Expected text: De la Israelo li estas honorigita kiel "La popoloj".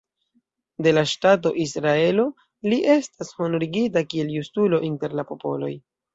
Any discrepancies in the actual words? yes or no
yes